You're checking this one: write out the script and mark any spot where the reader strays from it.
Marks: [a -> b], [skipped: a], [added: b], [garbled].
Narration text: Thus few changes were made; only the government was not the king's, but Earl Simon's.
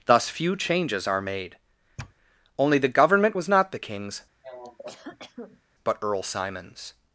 Thus few changes [were -> are] made; only the government was not the king's, but Earl Simon's.